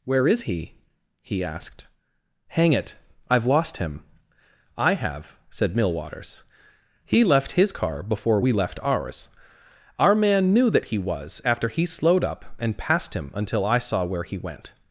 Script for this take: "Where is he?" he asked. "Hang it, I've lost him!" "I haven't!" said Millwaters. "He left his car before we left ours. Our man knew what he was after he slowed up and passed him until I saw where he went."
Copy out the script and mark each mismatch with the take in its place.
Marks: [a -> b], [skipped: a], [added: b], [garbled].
"Where is he?" he asked. "Hang it, I've lost him!" "I [haven't!" -> have] said Millwaters. "He left his car before we left ours. Our man knew [what -> that] he was after he slowed up and passed him until I saw where he went."